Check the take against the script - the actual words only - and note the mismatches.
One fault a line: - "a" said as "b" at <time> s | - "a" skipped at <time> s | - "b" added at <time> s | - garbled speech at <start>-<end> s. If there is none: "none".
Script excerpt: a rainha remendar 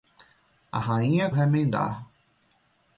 none